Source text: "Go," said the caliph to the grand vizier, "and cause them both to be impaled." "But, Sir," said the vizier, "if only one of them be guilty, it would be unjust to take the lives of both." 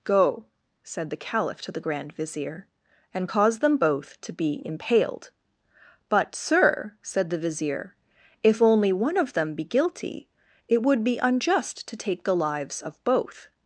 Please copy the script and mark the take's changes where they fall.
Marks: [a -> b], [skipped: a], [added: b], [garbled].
"Go," said the caliph to the grand vizier, "and cause them both to be impaled." "But, Sir," said the vizier, "if only one of them be guilty, it would be unjust to take the lives of both."